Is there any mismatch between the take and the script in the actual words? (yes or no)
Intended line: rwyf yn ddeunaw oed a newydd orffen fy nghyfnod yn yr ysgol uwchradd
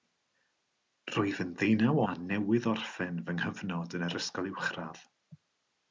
yes